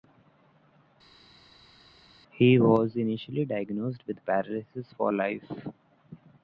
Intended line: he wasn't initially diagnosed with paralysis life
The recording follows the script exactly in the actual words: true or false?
false